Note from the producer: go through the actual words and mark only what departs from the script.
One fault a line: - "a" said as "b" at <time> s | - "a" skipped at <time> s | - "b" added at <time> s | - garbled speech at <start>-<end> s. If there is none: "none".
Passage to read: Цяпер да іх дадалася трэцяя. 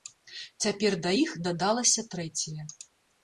none